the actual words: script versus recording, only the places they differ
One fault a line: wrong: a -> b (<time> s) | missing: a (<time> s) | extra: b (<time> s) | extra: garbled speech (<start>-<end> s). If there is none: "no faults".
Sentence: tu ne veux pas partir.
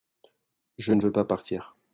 wrong: tu -> je (0.8 s)